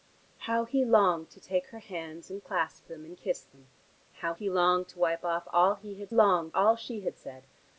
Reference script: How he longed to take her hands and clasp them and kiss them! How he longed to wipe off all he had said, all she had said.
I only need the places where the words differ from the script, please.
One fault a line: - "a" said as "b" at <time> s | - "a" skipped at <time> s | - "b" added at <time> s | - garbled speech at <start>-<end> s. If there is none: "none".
- "said" said as "longed" at 6.1 s